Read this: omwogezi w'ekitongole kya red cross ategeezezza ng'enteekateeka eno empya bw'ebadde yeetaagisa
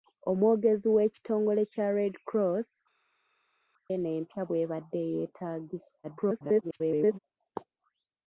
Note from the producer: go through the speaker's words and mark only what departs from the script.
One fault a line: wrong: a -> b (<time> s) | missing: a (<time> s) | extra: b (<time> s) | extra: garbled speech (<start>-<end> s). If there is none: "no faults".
missing: ategeezezza ng'enteekateeka (2.7 s)
extra: garbled speech (6.0-7.2 s)